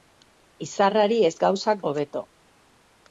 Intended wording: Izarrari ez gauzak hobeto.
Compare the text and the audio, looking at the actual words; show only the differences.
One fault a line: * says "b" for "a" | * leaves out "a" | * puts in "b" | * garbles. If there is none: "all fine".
all fine